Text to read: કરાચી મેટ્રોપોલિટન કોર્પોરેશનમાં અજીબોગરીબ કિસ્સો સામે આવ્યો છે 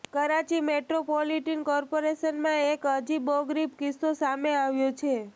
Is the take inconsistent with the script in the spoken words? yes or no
yes